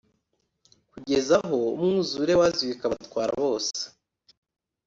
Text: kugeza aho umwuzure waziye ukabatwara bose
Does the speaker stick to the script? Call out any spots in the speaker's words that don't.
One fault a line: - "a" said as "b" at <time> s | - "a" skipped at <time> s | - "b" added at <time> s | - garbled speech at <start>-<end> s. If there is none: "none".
none